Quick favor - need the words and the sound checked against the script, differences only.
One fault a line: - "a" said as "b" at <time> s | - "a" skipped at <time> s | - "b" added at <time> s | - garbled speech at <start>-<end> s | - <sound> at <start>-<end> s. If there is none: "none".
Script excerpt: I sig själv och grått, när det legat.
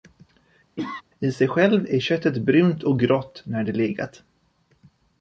- cough at 0.8-1.0 s
- "är köttet brunt" added at 1.9 s